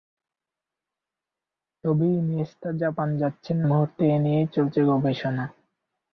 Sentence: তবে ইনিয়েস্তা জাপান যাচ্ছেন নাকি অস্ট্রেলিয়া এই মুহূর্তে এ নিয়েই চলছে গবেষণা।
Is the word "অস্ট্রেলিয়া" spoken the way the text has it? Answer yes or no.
no